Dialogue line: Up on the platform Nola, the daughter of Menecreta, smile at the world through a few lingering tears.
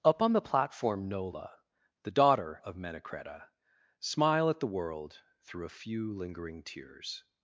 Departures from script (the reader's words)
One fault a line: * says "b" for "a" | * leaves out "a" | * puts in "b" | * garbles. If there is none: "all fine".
all fine